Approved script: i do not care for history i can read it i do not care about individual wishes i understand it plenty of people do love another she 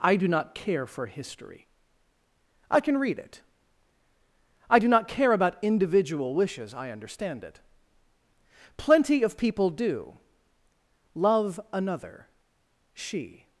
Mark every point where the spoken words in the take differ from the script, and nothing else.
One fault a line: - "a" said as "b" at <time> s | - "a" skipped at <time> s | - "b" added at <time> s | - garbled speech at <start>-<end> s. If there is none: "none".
none